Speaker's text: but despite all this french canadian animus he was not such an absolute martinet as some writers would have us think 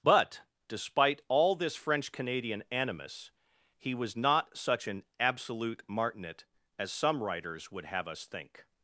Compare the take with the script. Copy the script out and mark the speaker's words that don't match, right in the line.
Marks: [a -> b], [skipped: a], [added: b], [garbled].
but despite all this french canadian animus he was not such an absolute martinet as some writers would have us think